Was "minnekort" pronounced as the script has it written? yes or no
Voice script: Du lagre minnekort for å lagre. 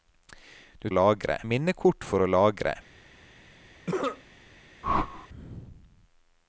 yes